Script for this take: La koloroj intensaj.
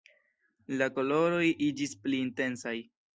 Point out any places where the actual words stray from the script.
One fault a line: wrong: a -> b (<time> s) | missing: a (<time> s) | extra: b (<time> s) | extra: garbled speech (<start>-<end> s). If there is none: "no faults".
extra: iĝis pli (1.7 s)